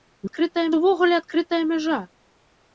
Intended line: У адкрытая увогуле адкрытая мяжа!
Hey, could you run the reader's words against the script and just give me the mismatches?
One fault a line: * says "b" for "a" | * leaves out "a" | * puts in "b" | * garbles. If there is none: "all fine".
all fine